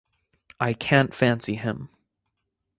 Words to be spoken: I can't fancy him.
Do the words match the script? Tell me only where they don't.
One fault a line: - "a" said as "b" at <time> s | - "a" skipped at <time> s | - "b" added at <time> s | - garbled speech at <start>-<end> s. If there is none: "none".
none